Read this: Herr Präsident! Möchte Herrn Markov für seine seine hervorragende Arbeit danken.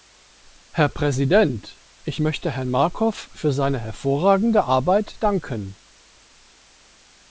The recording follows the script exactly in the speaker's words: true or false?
false